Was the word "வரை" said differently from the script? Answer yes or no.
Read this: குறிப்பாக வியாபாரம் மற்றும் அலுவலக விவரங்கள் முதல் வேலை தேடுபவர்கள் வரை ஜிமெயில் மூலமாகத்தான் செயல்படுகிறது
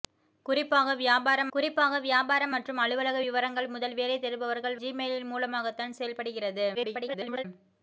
yes